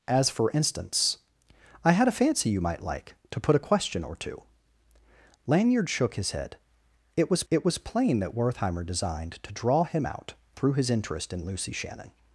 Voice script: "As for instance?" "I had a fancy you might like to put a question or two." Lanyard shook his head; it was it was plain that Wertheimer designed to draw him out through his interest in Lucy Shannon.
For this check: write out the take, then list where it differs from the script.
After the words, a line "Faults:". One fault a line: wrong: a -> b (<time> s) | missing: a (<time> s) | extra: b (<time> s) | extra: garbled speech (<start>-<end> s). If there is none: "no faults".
"As for instance?" "I had a fancy you might like to put a question or two." Lanyard shook his head; it was it was plain that Wertheimer designed to draw him out through his interest in Lucy Shannon.
Faults:
no faults